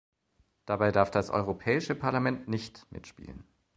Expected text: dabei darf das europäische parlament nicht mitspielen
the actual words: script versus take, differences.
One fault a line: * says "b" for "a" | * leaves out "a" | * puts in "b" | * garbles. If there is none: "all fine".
all fine